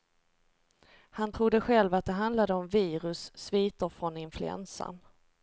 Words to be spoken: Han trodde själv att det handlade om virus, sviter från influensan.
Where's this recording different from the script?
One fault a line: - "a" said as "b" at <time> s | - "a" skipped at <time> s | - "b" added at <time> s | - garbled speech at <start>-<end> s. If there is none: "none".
none